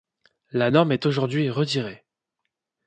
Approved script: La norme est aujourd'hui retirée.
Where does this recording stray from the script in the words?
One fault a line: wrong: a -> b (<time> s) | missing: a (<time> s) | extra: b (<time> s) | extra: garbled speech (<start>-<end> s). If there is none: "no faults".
no faults